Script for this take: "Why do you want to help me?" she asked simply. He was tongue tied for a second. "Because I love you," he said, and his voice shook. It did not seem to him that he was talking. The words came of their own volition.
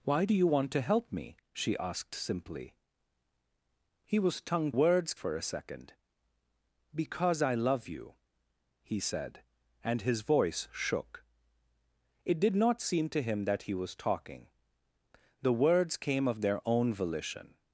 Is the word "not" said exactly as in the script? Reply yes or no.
yes